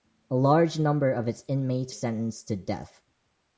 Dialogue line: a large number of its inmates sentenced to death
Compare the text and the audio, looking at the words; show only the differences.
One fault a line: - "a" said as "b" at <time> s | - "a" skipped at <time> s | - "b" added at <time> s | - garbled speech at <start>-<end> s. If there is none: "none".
none